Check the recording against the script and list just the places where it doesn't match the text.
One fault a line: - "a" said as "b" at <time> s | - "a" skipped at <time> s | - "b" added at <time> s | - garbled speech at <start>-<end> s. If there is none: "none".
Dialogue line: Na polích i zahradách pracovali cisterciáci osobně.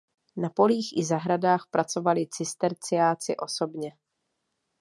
none